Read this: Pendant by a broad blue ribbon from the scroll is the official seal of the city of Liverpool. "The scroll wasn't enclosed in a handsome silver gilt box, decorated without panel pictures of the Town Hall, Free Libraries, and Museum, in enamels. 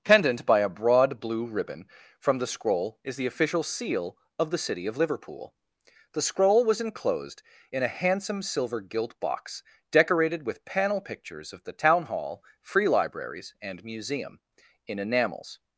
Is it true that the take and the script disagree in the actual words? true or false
true